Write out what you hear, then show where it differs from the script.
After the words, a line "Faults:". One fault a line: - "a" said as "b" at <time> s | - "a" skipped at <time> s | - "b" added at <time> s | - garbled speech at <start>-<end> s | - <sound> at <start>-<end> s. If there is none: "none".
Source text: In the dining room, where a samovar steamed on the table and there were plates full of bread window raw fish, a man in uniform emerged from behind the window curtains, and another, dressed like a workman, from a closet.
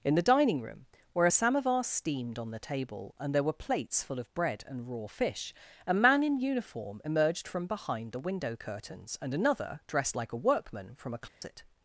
In the dining room, where a samovar steamed on the table and there were plates full of bread and raw fish, a man in uniform emerged from behind the window curtains, and another, dressed like a workman, from a closet.
Faults:
- "window" said as "and" at 4.6 s
- dropout at 11.3-11.4 s